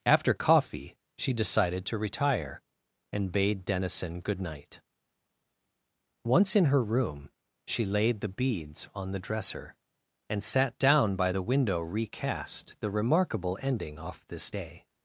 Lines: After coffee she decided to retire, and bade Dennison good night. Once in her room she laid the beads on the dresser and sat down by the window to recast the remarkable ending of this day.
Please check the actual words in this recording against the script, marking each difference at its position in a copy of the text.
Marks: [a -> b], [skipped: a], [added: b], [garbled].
After coffee she decided to retire, and bade Dennison good night. Once in her room she laid the beads on the dresser and sat down by the window [skipped: to] recast the remarkable ending [of -> off] this day.